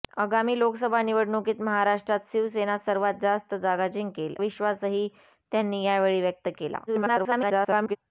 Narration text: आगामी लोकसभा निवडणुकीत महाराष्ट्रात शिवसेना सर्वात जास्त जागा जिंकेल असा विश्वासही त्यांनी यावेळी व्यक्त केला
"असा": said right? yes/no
no